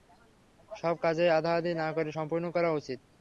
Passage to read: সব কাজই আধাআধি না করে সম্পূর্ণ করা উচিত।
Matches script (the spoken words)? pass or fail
pass